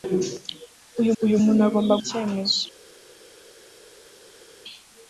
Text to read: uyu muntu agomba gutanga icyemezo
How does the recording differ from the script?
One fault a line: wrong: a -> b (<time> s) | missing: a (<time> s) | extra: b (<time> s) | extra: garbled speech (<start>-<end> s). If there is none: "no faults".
extra: uyu (1.2 s)
missing: gutanga (1.9 s)